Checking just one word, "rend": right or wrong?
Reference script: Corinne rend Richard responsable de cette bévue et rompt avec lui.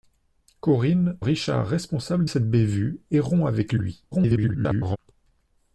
wrong